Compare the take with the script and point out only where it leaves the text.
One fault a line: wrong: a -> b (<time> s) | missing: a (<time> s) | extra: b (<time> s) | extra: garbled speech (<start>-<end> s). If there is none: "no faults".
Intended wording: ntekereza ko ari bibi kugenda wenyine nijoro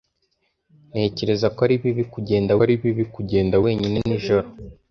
extra: ari bibi kugenda (2.6 s)